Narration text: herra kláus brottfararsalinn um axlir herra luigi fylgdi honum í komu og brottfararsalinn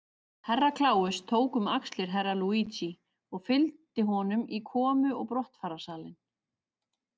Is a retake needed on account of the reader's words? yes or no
yes